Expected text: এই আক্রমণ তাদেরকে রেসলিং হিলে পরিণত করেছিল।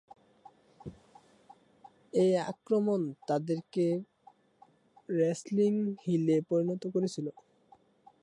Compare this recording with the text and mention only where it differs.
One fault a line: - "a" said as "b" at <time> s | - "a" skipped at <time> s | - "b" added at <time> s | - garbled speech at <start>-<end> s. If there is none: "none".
none